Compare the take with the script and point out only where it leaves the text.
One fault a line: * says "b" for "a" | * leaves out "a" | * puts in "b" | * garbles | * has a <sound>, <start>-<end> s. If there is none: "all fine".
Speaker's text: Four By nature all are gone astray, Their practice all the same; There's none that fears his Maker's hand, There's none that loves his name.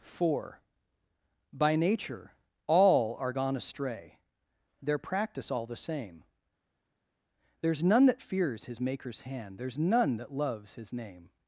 all fine